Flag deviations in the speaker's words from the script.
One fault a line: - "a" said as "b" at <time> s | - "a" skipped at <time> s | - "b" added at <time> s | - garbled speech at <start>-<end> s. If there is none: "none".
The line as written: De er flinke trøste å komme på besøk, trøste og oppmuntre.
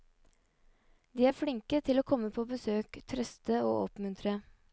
- "trøste" said as "til" at 1.8 s